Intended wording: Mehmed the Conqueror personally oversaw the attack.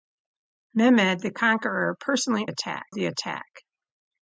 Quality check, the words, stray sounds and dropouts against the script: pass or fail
fail